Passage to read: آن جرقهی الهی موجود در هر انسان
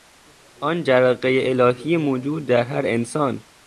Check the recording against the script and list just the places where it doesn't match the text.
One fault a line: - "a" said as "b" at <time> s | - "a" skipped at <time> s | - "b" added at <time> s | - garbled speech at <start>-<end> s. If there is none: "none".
none